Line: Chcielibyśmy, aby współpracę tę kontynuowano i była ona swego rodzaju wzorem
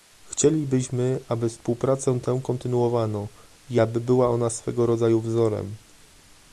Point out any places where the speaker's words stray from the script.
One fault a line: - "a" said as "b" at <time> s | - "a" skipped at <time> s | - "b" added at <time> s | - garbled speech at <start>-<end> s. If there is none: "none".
- "aby" added at 3.8 s